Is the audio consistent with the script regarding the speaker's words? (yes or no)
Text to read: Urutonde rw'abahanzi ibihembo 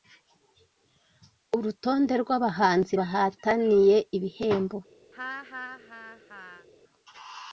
no